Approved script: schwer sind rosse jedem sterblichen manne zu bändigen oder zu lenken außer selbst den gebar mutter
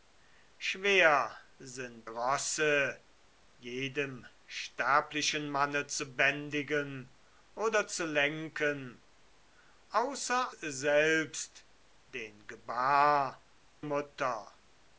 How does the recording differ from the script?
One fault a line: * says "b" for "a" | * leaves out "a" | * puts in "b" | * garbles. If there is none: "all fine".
all fine